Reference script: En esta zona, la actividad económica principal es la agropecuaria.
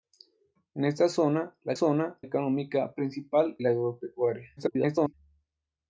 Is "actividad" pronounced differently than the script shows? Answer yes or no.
yes